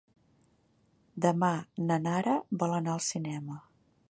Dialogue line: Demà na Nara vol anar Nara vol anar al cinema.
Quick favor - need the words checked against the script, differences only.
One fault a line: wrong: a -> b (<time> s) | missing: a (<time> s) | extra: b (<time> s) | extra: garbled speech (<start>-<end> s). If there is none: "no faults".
missing: Nara vol anar (3.0 s)